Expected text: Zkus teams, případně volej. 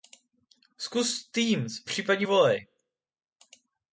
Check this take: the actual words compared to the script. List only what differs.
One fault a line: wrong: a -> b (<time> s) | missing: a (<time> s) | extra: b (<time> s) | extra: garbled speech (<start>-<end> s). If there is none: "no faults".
no faults